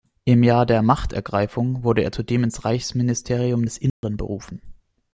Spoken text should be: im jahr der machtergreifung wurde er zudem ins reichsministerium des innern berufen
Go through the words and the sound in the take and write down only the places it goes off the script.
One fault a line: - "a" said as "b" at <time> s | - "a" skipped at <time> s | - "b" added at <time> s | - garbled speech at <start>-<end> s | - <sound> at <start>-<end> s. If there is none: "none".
- dropout at 3.9-4.0 s